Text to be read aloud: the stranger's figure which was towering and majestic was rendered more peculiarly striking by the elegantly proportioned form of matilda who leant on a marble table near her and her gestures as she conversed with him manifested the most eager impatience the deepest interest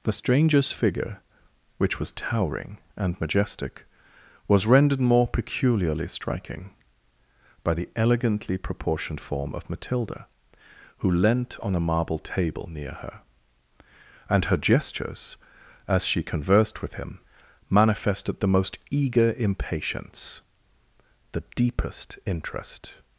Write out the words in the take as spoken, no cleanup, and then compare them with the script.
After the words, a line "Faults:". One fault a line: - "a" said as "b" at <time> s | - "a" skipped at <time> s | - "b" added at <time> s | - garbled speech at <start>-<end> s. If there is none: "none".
the stranger's figure which was towering and majestic was rendered more peculiarly striking by the elegantly proportioned form of matilda who leant on a marble table near her and her gestures as she conversed with him manifested the most eager impatience the deepest interest
Faults:
none